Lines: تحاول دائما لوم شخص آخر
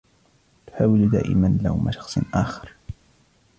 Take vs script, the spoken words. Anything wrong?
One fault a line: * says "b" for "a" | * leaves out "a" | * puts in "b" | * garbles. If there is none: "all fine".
all fine